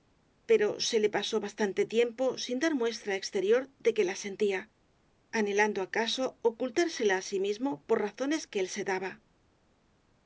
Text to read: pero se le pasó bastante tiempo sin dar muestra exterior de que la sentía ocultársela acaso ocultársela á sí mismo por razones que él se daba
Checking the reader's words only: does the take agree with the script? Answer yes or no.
no